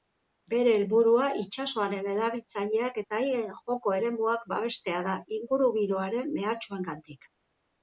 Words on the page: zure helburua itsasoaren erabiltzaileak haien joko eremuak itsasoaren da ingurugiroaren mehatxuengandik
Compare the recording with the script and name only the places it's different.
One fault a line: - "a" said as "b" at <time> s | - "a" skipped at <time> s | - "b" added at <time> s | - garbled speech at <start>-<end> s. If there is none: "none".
- "zure" said as "bere" at 0.5 s
- "eta" added at 3.0 s
- "itsasoaren" said as "babestea" at 4.6 s